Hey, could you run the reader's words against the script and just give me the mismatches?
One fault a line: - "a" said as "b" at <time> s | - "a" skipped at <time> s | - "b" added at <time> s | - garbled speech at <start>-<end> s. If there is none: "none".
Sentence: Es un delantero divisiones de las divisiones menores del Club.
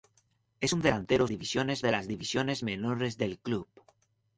none